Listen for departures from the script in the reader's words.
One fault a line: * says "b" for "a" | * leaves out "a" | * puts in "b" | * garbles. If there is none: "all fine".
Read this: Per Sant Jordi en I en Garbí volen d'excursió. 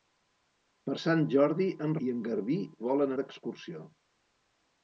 all fine